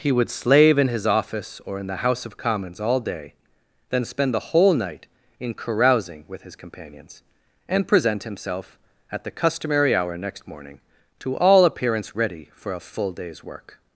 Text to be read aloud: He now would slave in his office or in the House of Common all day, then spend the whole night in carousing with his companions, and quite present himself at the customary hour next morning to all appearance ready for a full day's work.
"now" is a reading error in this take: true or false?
true